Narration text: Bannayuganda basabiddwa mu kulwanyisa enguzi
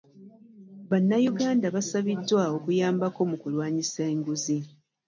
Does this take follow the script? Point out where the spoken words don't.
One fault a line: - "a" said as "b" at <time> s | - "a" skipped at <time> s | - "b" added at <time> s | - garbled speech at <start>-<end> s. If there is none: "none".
- "okuyambako" added at 2.6 s